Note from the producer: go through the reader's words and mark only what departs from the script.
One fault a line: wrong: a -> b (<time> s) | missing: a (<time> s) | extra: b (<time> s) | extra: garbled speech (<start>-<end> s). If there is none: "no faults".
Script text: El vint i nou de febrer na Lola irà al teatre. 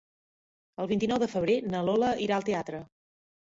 no faults